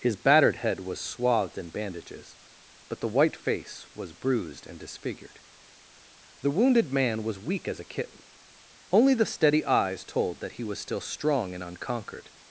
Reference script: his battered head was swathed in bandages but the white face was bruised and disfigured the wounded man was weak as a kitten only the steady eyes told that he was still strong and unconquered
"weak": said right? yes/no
yes